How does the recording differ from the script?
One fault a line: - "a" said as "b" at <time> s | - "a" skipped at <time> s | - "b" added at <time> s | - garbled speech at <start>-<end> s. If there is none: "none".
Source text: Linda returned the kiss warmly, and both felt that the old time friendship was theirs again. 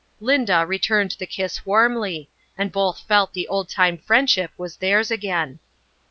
- "that" skipped at 3.3 s